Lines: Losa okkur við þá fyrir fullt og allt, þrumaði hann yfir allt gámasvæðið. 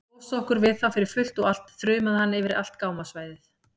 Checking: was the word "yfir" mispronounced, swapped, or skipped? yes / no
no